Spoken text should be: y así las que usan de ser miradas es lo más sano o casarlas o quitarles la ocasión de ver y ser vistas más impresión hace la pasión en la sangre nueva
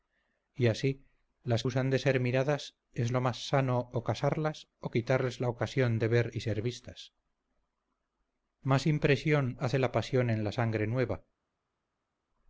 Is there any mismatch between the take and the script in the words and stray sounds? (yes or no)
yes